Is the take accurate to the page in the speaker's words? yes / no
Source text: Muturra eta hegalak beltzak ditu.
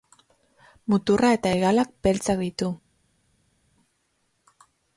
yes